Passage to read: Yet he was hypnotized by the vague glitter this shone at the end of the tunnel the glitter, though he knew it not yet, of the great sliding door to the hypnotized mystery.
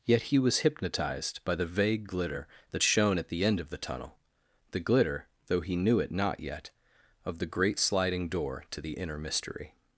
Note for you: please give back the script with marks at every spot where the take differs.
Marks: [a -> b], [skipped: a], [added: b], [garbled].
Yet he was hypnotized by the vague glitter [this -> that] shone at the end of the tunnel the glitter, though he knew it not yet, of the great sliding door to the [hypnotized -> inner] mystery.